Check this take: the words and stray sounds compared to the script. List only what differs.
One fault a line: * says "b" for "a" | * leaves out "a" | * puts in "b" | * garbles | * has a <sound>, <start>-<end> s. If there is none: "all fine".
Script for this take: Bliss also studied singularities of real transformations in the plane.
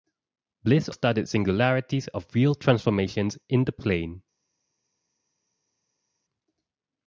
* leaves out "also"